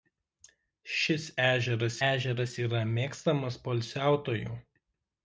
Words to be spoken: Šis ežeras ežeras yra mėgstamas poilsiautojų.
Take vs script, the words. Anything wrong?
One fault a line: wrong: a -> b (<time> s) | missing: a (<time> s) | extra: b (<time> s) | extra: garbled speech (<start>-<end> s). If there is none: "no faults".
no faults